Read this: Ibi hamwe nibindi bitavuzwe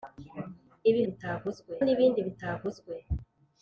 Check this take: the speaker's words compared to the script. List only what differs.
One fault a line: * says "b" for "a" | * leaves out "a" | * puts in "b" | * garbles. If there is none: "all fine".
* says "bitavuzwe" for "hamwe"